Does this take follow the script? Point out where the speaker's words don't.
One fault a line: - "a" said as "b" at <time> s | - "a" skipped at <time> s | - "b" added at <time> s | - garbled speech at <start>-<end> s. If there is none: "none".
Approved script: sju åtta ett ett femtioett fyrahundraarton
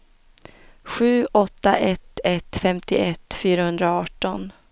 none